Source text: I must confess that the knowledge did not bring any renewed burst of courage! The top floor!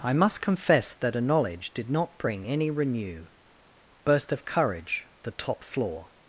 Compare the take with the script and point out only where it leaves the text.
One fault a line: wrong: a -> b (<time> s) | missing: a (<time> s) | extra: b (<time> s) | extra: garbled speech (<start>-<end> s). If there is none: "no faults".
wrong: the -> a (1.1 s)
wrong: renewed -> renew (2.7 s)